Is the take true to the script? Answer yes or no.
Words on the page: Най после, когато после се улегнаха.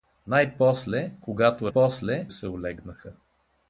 yes